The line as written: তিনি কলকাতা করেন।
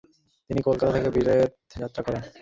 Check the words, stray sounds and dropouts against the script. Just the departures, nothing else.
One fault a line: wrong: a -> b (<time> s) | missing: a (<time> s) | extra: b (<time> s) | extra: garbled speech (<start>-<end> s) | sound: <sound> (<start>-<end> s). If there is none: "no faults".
extra: থেকে বিলেত যাত্রা (0.9 s)